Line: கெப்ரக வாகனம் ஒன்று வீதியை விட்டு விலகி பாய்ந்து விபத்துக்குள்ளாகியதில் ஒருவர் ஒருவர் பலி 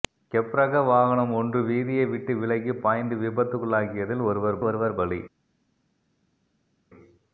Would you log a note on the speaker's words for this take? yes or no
no